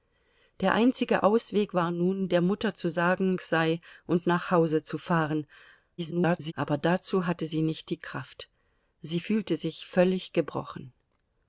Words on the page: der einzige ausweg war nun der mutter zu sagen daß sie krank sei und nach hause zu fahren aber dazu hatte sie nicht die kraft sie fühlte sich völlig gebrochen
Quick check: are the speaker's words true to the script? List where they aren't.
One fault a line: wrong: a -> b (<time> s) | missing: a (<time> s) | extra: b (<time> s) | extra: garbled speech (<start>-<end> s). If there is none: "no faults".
missing: daß sie krank (3.4 s)
extra: garbled speech (6.0-6.5 s)